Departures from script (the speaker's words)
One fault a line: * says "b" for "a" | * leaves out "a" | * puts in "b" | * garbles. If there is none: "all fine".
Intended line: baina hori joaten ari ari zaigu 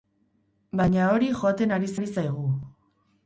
all fine